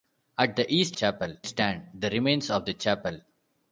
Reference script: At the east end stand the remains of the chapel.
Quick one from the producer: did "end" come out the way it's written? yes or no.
no